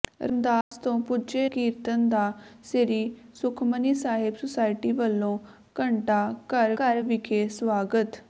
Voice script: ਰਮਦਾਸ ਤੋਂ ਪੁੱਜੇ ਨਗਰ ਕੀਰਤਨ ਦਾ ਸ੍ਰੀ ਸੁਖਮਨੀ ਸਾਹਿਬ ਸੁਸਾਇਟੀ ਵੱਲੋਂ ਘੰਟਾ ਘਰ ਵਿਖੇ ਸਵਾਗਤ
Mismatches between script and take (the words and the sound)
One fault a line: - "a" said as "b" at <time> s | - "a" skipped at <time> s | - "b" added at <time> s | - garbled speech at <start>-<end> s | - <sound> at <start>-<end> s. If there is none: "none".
- dropout at 0.6-0.7 s
- "ਨਗਰ" skipped at 1.5 s
- "ਘਰ" added at 6.8 s